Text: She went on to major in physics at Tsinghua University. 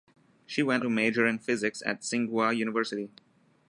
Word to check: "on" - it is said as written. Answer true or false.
false